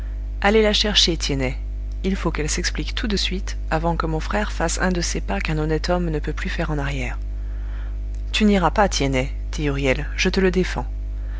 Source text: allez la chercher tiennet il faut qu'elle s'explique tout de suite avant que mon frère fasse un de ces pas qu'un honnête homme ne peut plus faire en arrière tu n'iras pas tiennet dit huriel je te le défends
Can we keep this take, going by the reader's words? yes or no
yes